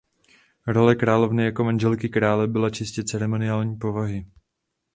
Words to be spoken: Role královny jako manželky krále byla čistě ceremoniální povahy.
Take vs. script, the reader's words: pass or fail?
pass